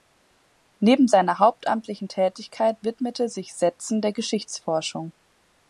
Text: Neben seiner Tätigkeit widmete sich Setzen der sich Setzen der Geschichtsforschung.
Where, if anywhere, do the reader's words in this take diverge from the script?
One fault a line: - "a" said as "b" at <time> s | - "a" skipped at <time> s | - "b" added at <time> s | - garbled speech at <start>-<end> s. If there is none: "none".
- "hauptamtlichen" added at 1.4 s
- "sich Setzen der" skipped at 4.1 s